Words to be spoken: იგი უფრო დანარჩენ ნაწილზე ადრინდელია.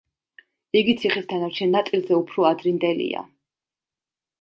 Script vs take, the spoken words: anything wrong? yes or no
yes